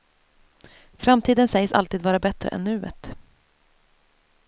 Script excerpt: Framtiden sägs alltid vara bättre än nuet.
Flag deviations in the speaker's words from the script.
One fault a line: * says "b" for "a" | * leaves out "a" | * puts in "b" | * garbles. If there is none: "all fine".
all fine